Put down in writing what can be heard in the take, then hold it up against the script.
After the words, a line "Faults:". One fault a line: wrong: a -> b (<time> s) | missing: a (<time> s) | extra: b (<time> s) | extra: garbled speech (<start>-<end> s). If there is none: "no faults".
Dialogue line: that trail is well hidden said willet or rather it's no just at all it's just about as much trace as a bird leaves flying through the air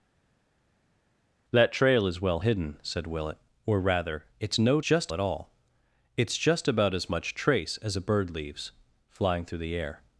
that trail is well hidden said willet or rather it's no just at all it's just about as much trace as a bird leaves flying through the air
Faults:
no faults